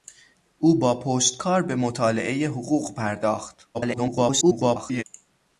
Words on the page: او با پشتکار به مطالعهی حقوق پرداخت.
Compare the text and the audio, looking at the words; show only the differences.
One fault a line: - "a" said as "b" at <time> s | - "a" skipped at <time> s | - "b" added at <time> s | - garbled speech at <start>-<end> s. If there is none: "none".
- garbled speech at 3.7-5.0 s